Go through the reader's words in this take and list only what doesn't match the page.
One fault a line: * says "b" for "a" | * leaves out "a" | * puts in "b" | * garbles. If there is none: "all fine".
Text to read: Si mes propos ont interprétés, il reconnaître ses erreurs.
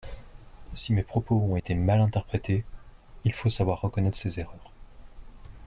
* puts in "été mal"
* puts in "faut savoir"